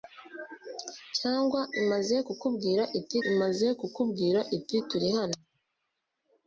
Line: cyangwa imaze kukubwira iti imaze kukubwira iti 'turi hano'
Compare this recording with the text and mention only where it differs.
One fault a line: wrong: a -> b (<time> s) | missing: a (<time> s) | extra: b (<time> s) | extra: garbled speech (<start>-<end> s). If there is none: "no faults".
no faults